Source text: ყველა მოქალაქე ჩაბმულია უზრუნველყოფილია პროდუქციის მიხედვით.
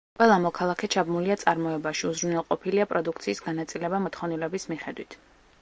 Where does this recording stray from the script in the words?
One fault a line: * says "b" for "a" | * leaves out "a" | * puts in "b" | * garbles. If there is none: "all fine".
* puts in "წარმოებაში"
* puts in "განაწილება მოთხოვნილების"